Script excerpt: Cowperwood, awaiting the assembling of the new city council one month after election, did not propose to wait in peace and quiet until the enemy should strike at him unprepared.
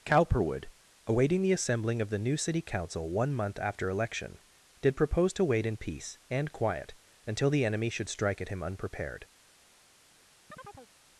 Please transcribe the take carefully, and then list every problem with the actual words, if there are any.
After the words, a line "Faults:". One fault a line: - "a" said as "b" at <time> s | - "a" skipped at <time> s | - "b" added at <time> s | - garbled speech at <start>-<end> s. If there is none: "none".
Cowperwood, awaiting the assembling of the new city council one month after election, did propose to wait in peace and quiet until the enemy should strike at him unprepared.
Faults:
- "not" skipped at 5.0 s